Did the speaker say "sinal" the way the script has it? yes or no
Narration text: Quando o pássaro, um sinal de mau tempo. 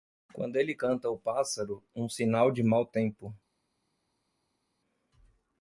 yes